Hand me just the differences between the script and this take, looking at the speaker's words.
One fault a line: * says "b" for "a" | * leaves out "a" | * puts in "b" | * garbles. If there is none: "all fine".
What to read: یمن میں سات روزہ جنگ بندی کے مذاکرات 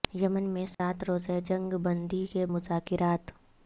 all fine